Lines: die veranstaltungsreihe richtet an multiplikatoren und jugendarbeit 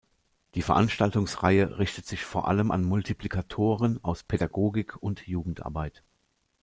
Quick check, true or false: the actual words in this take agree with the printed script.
false